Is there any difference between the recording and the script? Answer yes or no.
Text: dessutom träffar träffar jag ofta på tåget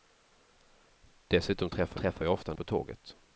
no